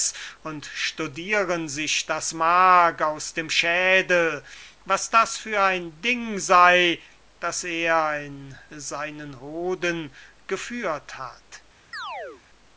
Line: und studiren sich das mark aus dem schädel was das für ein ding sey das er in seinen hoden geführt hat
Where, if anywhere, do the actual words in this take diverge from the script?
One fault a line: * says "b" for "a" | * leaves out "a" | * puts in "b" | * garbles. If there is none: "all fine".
all fine